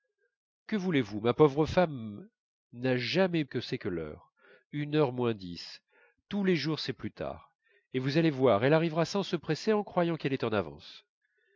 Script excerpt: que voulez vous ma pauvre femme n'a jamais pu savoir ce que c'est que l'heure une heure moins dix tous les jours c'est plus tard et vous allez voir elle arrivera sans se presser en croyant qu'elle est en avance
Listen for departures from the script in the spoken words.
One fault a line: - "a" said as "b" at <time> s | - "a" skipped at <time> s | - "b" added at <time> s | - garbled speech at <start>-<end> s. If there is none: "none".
- "pu savoir ce" skipped at 3.5 s